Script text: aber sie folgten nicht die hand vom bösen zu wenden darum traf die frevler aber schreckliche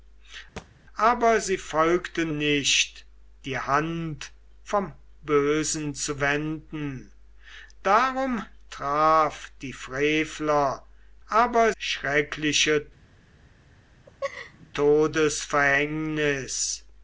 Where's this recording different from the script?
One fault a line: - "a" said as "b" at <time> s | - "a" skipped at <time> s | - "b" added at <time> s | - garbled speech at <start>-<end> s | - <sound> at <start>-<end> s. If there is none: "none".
- thud at 0.6-0.7 s
- laugh at 14.1-14.7 s